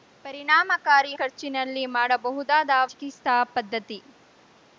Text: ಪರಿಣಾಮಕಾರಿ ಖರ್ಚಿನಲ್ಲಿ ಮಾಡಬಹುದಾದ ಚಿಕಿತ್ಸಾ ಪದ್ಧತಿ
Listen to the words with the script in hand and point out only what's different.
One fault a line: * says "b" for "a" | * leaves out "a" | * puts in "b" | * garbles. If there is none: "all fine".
all fine